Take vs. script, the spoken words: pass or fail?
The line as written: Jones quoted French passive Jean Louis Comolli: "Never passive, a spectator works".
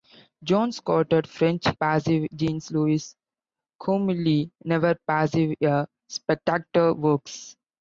pass